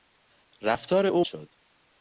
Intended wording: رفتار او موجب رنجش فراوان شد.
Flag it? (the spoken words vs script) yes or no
yes